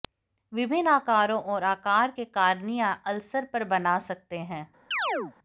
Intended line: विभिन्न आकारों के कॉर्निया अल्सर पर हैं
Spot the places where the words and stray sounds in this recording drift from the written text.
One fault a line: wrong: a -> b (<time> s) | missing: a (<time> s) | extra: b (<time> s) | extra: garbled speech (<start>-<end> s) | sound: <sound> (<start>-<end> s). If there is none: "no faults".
extra: और आकार (1.4 s)
extra: बना सकते (3.7 s)
sound: chirp (4.9-5.3 s)